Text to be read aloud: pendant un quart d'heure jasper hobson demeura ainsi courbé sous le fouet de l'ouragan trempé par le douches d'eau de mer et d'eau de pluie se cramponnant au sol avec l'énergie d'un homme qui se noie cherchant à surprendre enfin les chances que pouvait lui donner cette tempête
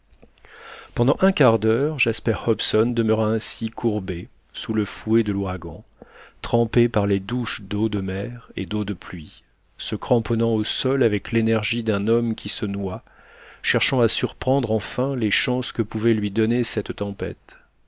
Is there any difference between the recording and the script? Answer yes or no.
yes